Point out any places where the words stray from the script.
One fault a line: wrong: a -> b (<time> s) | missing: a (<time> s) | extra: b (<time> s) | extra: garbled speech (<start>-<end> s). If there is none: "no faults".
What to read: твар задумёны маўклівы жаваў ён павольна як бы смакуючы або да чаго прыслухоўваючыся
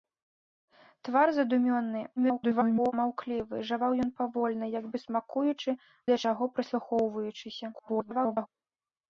extra: garbled speech (2.2-2.9 s)
missing: або (5.7 s)
extra: garbled speech (7.7-8.5 s)